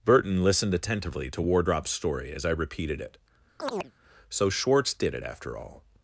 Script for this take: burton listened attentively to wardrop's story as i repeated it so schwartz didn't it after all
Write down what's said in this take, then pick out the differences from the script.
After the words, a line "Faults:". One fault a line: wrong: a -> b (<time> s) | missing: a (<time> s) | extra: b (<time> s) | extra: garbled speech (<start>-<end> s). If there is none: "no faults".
burton listened attentively to wardrop's story as i repeated it so schwartz did it after all
Faults:
wrong: didn't -> did (4.9 s)